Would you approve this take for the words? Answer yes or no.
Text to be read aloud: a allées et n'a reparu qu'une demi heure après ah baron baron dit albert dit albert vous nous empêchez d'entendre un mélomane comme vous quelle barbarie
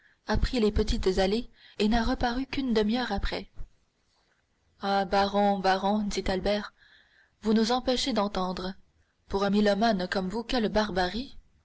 no